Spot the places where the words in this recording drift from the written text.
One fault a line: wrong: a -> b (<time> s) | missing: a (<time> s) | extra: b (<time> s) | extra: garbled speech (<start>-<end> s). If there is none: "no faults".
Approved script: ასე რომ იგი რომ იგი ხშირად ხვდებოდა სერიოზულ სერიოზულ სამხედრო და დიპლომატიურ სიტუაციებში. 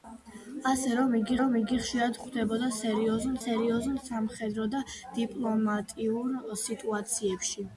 no faults